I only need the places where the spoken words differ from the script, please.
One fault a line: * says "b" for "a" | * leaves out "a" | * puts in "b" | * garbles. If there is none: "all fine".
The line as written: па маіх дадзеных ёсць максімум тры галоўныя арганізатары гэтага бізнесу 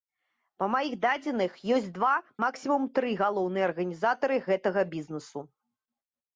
* puts in "два"